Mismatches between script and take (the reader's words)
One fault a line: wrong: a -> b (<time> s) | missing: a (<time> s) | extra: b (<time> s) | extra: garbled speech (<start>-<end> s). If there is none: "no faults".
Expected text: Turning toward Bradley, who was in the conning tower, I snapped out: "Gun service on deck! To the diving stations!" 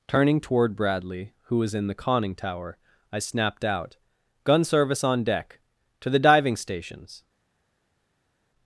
no faults